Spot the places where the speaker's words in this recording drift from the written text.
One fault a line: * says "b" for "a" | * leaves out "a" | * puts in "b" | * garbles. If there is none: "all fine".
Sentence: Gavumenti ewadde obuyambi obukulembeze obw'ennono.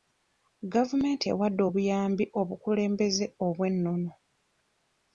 all fine